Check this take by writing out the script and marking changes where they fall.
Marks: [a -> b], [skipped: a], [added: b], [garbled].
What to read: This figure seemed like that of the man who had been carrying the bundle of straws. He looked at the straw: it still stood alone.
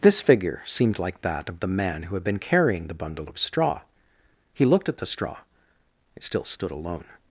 This figure seemed like that of the man who had been carrying the bundle of [straws. -> straw] He looked at the straw: it still stood alone.